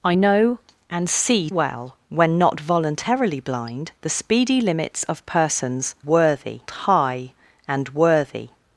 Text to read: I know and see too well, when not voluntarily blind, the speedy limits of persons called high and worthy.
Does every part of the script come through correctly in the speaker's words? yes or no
no